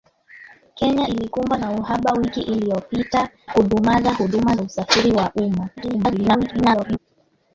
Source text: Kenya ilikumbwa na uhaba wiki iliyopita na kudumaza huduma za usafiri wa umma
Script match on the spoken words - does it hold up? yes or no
no